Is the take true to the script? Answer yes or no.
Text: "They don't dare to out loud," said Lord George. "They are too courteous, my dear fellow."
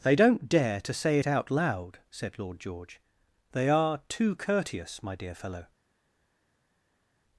no